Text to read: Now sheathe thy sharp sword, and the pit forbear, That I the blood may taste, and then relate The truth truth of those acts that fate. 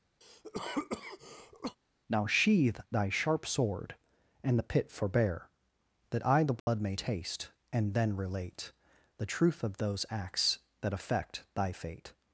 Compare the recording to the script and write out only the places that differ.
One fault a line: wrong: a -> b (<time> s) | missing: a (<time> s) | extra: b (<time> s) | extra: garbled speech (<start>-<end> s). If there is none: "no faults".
missing: truth (9.6 s)
extra: affect thy (10.9 s)